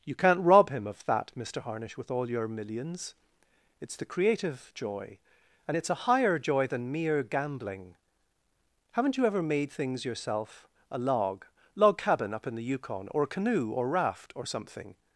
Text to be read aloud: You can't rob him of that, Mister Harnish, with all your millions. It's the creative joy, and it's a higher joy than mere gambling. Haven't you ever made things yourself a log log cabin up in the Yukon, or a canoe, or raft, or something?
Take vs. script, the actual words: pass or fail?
pass